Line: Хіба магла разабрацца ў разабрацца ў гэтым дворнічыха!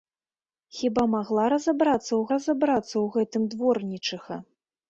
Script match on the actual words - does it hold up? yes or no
yes